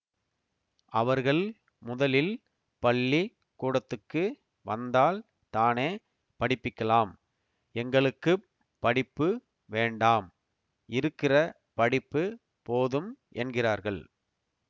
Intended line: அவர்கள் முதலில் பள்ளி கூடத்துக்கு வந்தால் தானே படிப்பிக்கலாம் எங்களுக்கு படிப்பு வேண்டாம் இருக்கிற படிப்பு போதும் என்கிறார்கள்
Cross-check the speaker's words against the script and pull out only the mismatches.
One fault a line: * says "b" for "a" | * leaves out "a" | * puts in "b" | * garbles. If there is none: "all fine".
all fine